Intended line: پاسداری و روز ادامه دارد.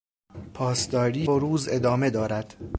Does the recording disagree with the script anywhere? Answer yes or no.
no